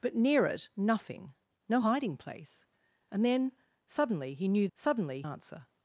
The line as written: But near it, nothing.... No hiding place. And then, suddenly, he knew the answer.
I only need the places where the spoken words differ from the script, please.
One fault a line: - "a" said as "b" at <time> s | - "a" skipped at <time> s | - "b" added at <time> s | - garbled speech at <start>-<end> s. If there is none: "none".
- "the" said as "suddenly" at 4.7 s